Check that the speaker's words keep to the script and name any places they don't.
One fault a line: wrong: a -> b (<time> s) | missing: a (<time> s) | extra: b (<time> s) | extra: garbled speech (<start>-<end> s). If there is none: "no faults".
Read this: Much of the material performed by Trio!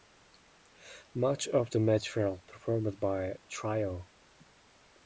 no faults